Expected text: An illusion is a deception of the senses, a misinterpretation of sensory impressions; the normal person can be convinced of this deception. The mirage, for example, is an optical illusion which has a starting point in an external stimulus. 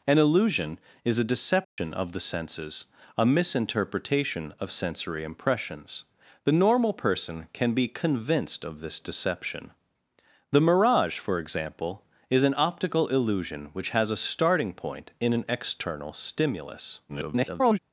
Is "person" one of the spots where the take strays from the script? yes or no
no